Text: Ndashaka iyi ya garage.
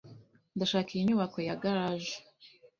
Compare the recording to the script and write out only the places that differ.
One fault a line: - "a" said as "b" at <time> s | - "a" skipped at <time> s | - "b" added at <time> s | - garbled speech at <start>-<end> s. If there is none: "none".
- "nyubako" added at 1.1 s